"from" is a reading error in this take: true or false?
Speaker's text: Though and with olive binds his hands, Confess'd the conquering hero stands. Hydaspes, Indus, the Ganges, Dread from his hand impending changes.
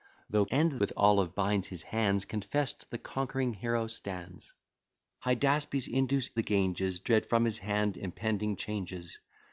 false